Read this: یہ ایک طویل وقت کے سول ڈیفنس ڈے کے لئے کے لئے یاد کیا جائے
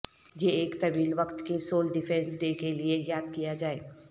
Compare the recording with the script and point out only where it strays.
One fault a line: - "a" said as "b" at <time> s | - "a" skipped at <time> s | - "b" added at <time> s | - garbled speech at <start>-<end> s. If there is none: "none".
- "کے لئے" skipped at 3.0 s